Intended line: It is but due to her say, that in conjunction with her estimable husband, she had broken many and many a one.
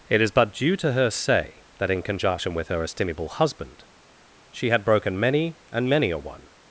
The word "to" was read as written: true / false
true